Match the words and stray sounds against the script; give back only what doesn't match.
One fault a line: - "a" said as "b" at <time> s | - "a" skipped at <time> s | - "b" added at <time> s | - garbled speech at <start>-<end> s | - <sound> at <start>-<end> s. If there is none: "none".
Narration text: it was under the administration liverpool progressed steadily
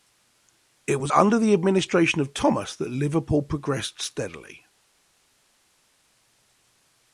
- "of thomas that" added at 2.2 s